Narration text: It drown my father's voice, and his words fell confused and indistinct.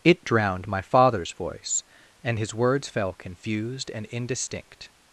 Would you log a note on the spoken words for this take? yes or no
yes